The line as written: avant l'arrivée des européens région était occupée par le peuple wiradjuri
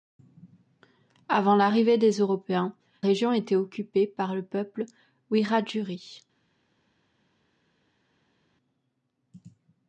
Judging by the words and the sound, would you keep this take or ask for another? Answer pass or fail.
pass